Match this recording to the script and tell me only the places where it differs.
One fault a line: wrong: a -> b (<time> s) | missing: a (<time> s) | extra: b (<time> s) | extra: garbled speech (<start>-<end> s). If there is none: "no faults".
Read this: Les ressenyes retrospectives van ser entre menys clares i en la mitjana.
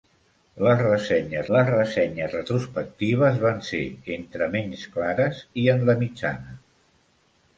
extra: les ressenyes (1.6 s)